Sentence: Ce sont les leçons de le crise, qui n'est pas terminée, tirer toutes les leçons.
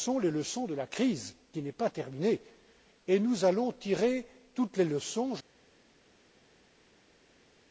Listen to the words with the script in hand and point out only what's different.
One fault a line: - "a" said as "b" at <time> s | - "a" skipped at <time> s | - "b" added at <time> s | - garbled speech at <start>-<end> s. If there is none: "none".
- "le" said as "la" at 0.7 s
- "et nous allons" added at 3.1 s